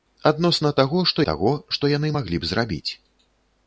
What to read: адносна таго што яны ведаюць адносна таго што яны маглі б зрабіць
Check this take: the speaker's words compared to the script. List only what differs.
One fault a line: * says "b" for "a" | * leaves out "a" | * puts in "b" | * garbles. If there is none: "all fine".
* leaves out "яны ведаюць адносна"